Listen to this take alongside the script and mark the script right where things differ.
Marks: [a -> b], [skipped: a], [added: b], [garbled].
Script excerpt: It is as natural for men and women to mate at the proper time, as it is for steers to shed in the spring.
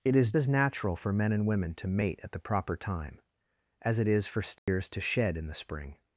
It is as natural for men and women to mate at the proper time, as it is for steers to shed in the spring.